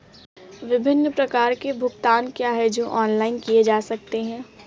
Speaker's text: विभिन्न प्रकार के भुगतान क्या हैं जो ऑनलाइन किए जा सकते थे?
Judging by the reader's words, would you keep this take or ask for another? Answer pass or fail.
fail